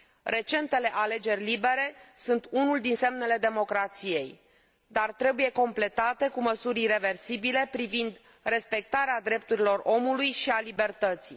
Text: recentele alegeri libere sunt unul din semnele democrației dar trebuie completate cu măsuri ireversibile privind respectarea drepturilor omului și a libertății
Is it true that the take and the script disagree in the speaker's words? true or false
false